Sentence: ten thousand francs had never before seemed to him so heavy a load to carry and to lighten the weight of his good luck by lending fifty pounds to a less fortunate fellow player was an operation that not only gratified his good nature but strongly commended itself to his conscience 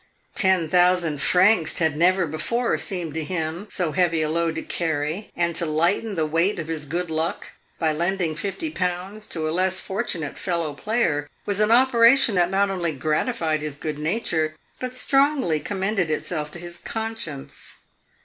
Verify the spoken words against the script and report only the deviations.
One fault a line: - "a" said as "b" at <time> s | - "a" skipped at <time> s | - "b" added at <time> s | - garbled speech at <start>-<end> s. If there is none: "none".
none